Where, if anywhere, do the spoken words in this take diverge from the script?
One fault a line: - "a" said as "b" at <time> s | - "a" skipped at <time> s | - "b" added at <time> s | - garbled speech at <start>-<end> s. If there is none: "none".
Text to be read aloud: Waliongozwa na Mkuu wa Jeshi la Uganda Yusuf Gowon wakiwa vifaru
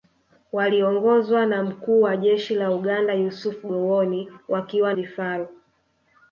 none